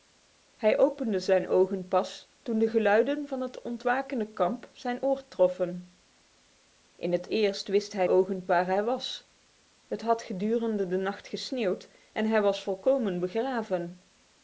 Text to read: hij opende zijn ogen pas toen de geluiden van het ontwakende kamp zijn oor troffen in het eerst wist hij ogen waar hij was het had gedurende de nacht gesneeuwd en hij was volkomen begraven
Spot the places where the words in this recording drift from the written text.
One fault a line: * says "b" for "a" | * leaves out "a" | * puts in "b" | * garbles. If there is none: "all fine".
all fine